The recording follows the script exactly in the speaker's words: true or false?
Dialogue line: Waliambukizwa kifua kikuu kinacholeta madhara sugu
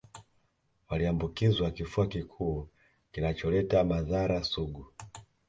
true